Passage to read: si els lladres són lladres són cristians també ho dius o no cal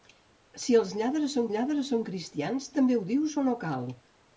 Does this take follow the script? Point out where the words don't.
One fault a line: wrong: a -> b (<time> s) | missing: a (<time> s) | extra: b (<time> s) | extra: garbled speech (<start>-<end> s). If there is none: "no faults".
no faults